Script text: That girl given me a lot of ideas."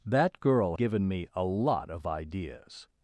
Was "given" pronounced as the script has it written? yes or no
yes